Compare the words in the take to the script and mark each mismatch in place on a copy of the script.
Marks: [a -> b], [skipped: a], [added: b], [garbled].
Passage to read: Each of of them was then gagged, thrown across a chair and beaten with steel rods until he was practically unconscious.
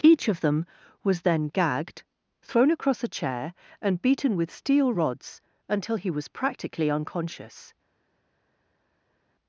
Each of [skipped: of] them was then gagged, thrown across a chair and beaten with steel rods until he was practically unconscious.